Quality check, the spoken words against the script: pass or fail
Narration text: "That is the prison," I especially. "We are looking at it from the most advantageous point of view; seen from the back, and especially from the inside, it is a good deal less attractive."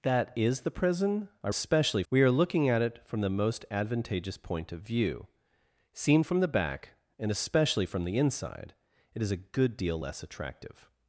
pass